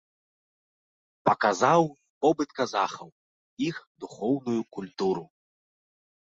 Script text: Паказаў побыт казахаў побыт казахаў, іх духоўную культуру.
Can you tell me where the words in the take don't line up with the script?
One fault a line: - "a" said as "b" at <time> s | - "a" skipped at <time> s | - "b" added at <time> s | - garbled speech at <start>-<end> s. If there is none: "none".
- "побыт казахаў" skipped at 3.1 s